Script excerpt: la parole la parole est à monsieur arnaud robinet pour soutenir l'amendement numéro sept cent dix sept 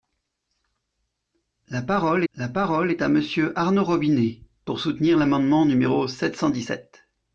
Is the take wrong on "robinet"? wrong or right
right